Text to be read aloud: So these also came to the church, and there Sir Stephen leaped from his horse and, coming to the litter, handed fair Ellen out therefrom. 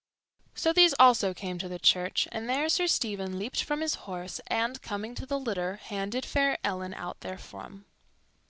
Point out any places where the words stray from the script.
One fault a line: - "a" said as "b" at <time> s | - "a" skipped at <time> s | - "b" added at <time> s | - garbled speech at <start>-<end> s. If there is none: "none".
none